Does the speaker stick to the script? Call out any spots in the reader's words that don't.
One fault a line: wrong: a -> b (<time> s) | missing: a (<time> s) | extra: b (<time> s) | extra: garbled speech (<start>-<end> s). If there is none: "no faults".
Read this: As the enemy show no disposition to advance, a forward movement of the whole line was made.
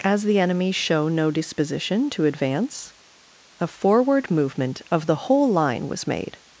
no faults